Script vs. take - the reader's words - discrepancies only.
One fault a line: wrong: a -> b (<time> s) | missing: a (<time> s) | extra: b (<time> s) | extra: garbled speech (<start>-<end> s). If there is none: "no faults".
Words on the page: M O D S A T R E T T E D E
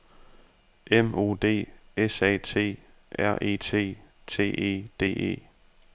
no faults